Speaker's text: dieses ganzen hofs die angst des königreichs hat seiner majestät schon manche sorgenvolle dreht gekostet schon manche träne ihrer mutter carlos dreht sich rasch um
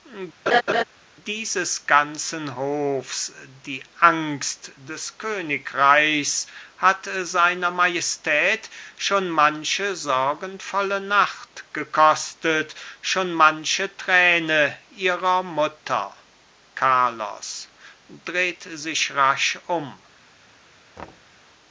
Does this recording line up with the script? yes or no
no